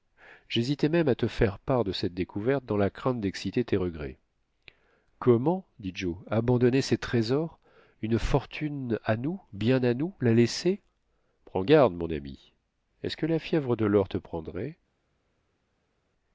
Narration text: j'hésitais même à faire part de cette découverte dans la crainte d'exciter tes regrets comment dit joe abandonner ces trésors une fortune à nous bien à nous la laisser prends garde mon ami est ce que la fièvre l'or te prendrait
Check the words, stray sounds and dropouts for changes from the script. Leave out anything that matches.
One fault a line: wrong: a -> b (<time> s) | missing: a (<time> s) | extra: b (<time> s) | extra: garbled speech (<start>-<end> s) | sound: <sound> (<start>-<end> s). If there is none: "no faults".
extra: te (1.1 s)
extra: de (13.8 s)